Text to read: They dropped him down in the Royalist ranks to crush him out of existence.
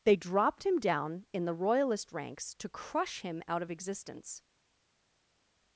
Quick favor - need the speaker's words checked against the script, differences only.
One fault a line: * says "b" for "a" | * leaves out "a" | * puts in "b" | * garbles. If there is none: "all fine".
all fine